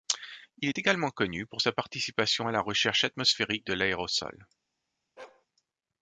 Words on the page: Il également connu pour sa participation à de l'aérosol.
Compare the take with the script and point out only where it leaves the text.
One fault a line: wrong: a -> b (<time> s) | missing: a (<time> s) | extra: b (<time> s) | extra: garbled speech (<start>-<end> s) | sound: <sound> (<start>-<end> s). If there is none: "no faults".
extra: est (0.7 s)
extra: la recherche atmosphérique (2.5 s)
sound: bark (5.2-5.5 s)